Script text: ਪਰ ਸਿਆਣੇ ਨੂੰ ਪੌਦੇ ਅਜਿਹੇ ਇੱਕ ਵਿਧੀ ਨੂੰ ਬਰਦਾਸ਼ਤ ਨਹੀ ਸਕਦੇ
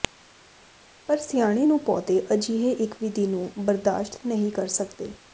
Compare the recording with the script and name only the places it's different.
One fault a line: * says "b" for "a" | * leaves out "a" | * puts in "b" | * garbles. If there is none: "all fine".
* puts in "ਕਰ"